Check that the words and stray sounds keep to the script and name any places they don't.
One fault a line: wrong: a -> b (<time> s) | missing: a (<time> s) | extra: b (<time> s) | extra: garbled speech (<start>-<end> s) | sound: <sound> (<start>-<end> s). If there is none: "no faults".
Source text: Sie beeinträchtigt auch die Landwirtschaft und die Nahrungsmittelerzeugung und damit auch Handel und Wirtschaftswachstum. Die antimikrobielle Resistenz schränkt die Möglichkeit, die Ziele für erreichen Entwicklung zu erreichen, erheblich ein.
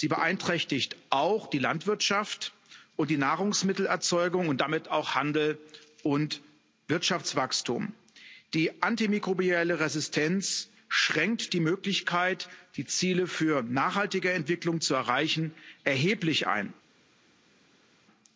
wrong: erreichen -> nachhaltige (13.6 s)